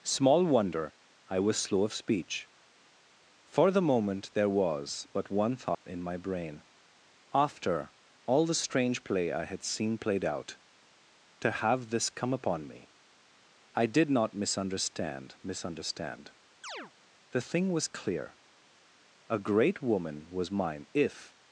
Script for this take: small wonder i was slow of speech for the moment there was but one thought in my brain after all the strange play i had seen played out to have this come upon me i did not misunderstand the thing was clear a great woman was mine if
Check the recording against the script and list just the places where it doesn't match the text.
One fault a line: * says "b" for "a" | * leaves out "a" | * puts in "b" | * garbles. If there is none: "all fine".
* puts in "misunderstand"